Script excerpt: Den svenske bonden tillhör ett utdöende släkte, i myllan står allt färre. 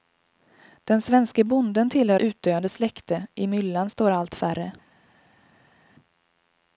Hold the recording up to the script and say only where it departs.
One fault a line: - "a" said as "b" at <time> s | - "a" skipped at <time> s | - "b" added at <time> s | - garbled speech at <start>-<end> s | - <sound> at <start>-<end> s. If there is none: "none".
- "ett" skipped at 2.2 s